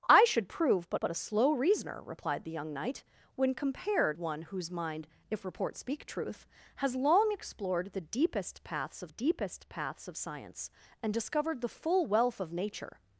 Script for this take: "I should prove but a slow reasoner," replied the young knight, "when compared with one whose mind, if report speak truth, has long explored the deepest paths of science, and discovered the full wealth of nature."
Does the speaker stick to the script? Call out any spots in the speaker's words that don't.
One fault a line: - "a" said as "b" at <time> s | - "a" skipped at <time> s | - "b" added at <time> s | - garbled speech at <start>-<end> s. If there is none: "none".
- "but" added at 1.0 s
- "with" skipped at 4.2 s
- "deepest paths of" added at 9.1 s